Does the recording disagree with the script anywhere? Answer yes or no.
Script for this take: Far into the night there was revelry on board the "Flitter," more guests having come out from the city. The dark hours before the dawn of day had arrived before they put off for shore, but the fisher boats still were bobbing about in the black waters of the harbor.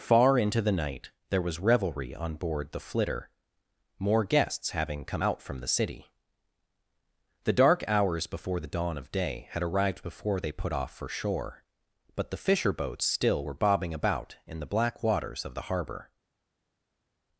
no